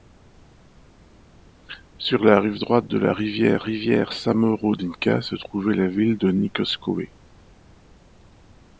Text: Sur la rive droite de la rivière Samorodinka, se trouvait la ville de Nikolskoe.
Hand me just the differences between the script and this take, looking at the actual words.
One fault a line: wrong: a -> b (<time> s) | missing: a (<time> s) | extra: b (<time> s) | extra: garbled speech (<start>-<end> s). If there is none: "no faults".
extra: rivière (3.6 s)